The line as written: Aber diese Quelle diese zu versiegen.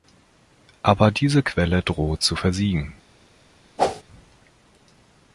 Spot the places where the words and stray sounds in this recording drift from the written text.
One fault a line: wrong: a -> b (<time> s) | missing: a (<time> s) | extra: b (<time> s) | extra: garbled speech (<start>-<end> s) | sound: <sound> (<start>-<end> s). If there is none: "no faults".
wrong: diese -> droht (1.8 s)
sound: whoosh (3.8-4.0 s)